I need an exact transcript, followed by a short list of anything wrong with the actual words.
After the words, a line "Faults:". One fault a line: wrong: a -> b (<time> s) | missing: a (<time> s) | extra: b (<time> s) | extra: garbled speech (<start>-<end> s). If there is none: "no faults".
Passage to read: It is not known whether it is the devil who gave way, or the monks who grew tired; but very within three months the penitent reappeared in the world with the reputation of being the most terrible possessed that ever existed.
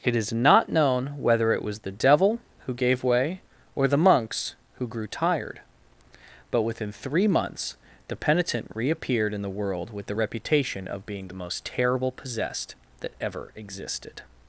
It is not known whether it was the devil who gave way, or the monks who grew tired; but within three months the penitent reappeared in the world with the reputation of being the most terrible possessed that ever existed.
Faults:
wrong: is -> was (1.6 s)
missing: very (6.6 s)